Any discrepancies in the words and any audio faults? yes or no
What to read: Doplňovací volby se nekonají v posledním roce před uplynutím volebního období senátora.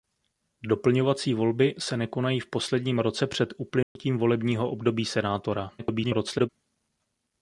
yes